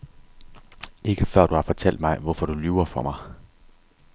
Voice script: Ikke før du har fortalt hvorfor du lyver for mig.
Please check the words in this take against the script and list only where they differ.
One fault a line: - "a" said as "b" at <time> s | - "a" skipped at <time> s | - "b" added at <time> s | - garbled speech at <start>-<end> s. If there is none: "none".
- "mig" added at 2.0 s